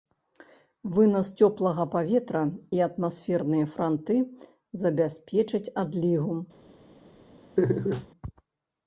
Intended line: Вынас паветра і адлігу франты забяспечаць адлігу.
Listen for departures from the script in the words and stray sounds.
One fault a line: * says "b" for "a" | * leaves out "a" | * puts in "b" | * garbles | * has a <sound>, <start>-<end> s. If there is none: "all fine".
* puts in "цёплага"
* says "атмасферныя" for "адлігу"
* has a laugh, 7.6-8.1 s